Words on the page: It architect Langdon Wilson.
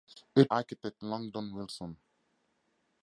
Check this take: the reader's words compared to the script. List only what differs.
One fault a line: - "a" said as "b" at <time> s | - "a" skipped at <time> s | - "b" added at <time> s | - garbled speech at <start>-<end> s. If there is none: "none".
none